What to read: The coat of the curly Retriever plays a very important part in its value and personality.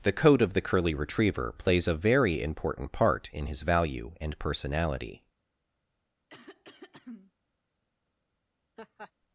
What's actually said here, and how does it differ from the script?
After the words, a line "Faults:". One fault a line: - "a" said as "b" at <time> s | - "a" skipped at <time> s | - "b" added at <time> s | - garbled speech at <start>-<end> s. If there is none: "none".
The coat of the curly Retriever plays a very important part in his value and personality.
Faults:
- "its" said as "his" at 3.4 s